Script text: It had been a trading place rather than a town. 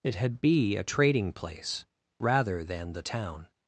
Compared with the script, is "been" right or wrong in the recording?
wrong